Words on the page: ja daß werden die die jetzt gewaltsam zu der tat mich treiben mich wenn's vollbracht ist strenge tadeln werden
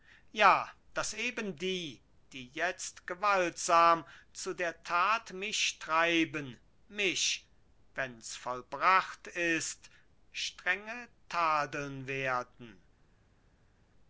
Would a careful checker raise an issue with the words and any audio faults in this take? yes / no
yes